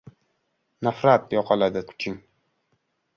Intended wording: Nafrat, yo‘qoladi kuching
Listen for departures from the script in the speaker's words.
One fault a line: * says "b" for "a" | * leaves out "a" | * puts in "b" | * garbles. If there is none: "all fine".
all fine